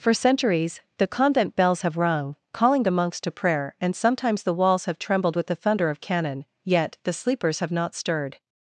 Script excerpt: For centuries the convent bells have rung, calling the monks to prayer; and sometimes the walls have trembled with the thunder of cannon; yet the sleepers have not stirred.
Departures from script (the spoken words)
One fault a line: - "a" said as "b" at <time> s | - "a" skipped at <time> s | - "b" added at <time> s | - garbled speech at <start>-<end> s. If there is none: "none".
none